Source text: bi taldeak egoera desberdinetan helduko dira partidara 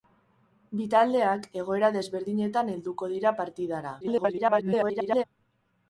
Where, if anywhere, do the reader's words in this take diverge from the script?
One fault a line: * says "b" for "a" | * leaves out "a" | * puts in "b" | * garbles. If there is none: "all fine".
* garbles